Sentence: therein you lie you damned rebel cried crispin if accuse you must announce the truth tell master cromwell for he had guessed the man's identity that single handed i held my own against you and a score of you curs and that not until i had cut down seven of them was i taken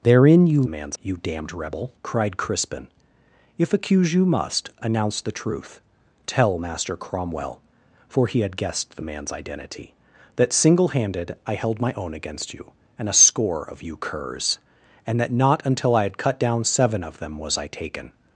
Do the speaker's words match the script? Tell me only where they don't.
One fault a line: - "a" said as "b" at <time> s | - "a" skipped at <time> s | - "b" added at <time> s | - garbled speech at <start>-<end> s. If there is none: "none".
- "lie" said as "man's" at 0.7 s